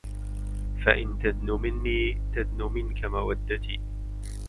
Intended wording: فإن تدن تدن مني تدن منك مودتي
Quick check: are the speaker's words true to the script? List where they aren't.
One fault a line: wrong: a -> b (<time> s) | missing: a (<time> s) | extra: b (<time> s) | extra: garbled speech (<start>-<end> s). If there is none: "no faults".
missing: تدن (1.5 s)